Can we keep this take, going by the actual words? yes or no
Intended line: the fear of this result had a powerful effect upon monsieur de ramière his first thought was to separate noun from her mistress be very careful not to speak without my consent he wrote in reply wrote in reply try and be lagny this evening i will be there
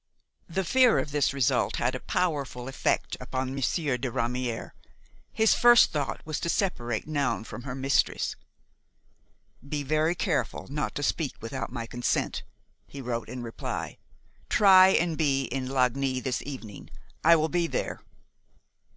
no